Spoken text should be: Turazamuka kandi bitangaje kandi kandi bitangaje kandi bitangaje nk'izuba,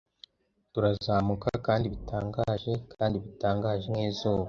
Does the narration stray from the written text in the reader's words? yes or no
yes